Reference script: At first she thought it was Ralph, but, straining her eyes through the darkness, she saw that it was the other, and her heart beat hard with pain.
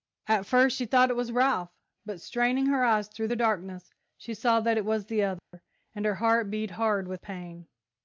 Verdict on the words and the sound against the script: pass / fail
fail